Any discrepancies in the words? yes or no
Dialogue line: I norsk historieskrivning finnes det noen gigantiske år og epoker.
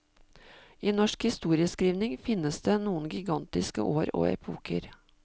no